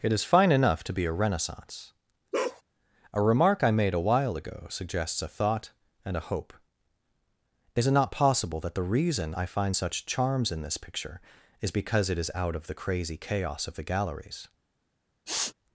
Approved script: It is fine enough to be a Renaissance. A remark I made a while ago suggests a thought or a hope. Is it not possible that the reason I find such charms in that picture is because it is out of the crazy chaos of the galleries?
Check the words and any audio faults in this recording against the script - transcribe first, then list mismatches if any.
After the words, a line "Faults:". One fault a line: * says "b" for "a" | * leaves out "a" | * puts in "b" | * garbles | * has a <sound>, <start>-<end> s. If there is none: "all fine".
It is fine enough to be a Renaissance. A remark I made a while ago suggests a thought and a hope. Is it not possible that the reason I find such charms in this picture is because it is out of the crazy chaos of the galleries?
Faults:
* has a bark, 2.3-2.6 s
* says "and" for "or"
* says "this" for "that"
* has a sniff, 15.3-15.5 s